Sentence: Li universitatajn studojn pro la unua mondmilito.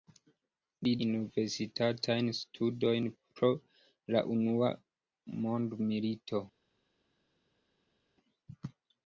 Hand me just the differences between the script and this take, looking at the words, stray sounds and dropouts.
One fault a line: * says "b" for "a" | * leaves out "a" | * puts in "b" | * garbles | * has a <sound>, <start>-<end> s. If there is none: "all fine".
all fine